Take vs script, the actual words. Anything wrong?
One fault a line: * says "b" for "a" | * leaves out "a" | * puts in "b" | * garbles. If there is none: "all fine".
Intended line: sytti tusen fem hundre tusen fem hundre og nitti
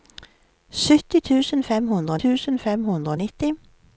all fine